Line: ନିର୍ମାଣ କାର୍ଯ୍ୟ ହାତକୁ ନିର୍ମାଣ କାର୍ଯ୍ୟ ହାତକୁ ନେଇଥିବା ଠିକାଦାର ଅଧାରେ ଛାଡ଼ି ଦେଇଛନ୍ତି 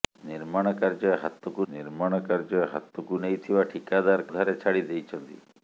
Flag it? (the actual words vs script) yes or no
no